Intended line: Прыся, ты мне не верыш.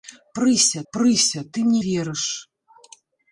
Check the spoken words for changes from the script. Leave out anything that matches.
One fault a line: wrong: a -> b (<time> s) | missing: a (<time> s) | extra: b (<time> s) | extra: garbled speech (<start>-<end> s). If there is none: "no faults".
extra: прыся (0.9 s)
missing: не (1.8 s)